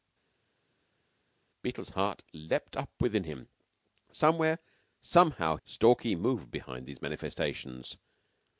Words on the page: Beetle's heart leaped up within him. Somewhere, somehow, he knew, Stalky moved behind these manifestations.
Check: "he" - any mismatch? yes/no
yes